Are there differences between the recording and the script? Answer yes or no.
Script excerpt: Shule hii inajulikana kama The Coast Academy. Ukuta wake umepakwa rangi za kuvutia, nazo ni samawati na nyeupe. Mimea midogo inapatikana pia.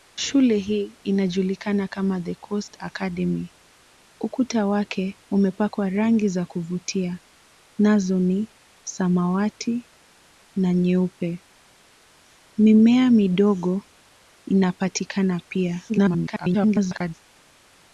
yes